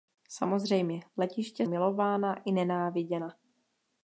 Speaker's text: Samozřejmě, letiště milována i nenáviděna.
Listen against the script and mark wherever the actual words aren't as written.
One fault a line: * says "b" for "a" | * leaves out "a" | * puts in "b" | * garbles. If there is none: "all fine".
all fine